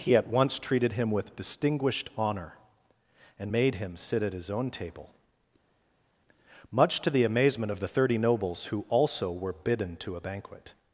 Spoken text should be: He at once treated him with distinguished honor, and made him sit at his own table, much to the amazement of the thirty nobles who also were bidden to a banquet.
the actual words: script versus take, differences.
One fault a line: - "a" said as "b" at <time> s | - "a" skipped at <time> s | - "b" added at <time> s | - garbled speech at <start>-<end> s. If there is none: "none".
none